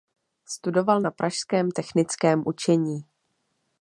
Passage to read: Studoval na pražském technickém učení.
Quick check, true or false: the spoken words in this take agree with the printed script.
true